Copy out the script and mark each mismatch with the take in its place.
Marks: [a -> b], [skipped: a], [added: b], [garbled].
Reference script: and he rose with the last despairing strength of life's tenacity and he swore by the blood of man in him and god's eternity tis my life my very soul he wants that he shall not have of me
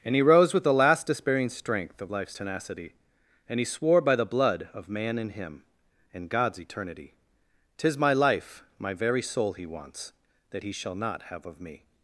and he rose with the last despairing strength of life's tenacity and he swore by the blood of man in him and god's eternity tis my life my very soul he wants that he shall not have of me